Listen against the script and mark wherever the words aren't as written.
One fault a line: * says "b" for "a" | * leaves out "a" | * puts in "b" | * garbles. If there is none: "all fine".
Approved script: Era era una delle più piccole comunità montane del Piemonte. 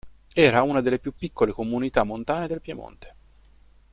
* leaves out "era"